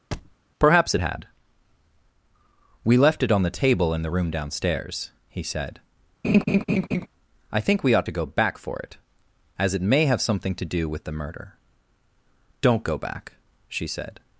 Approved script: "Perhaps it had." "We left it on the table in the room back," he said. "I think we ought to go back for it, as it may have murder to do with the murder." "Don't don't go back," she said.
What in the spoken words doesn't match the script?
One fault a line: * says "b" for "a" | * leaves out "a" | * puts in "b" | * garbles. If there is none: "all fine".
* says "downstairs" for "back"
* says "something" for "murder"
* leaves out "don't"